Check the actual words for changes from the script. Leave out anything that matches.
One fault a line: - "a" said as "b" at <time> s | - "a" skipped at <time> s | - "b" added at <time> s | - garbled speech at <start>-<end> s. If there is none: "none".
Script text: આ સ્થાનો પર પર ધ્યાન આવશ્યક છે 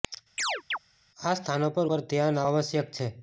none